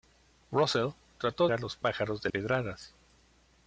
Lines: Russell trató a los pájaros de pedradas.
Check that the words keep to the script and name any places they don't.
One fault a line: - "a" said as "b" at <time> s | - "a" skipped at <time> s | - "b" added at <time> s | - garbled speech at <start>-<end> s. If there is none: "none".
none